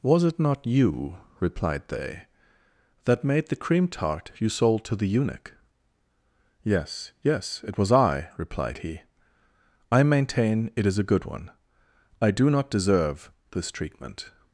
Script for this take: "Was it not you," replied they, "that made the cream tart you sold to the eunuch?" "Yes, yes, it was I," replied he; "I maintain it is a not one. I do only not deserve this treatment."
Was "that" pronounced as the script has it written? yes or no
yes